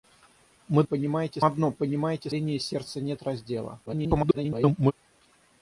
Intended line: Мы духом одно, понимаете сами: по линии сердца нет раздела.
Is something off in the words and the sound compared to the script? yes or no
yes